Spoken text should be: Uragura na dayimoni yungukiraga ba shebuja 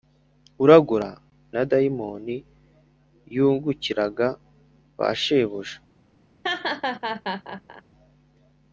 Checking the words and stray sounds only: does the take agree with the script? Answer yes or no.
no